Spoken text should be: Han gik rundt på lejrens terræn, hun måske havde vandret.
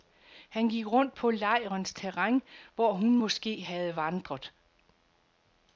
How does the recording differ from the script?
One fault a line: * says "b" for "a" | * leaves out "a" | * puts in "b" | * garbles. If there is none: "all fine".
* puts in "hvor"